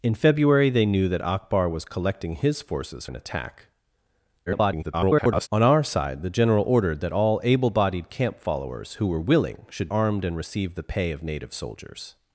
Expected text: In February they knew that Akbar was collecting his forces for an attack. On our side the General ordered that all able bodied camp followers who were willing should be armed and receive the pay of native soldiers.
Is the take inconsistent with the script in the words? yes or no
yes